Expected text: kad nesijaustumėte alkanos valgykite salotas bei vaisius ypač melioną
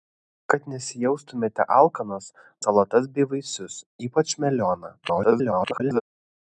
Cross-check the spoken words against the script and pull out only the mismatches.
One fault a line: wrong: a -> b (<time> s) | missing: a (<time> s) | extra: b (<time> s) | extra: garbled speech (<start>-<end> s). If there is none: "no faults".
missing: valgykite (2.3 s)
extra: garbled speech (5.0-6.0 s)